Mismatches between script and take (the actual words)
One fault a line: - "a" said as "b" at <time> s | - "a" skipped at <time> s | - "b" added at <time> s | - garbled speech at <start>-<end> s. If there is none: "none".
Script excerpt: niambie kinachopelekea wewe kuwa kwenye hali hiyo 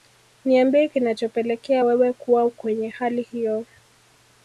none